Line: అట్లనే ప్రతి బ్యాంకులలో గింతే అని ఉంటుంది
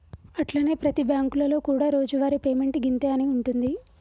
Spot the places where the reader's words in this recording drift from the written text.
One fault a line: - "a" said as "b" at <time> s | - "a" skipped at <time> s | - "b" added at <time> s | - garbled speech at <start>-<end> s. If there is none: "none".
- "కూడా రోజువారి పేమెంట్" added at 1.6 s